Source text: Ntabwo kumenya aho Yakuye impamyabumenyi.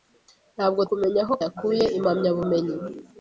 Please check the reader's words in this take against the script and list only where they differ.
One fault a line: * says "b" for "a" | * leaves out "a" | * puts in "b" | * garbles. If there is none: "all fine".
all fine